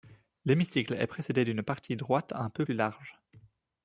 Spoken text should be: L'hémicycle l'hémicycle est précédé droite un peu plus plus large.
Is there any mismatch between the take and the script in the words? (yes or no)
yes